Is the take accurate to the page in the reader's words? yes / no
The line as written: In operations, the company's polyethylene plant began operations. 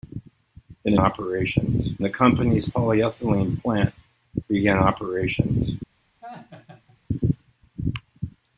yes